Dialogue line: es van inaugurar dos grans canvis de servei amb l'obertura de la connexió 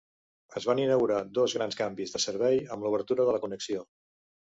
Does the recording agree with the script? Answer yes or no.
yes